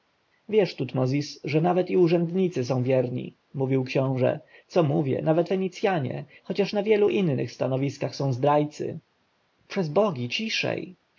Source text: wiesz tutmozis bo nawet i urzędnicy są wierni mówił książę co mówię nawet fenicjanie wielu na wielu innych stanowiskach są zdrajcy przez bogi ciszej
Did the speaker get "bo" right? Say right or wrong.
wrong